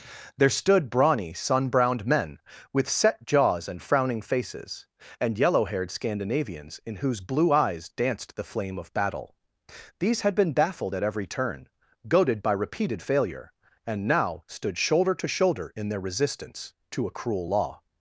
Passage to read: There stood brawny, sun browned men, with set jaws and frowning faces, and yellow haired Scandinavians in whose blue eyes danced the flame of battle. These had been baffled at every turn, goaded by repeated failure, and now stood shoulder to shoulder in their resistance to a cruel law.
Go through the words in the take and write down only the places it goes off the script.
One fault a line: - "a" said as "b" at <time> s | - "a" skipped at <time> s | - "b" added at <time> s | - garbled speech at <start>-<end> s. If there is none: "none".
none